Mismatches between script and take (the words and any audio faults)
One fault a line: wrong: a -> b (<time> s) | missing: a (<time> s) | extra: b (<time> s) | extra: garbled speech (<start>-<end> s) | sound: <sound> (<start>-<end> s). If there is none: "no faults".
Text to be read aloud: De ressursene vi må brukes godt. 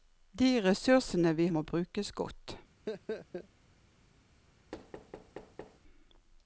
sound: laugh (2.9-3.5 s)
sound: thud (4.7-5.8 s)